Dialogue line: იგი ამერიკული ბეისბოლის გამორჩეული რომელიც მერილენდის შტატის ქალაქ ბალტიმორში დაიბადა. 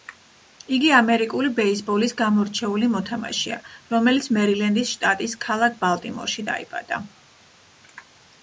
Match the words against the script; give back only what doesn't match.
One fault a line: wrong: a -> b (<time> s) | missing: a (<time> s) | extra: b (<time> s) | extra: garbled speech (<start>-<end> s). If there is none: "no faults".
extra: მოთამაშეა (3.0 s)